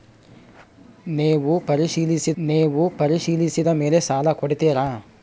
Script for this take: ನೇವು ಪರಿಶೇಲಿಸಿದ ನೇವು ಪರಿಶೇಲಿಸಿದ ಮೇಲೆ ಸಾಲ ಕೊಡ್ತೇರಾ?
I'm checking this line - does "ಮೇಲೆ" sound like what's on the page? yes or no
yes